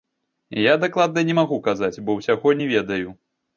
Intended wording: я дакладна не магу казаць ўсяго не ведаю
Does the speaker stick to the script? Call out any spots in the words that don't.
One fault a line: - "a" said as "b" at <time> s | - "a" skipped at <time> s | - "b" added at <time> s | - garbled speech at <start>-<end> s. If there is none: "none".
- "бо" added at 2.1 s